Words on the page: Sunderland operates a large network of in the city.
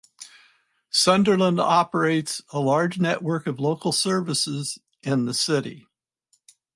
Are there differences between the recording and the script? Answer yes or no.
yes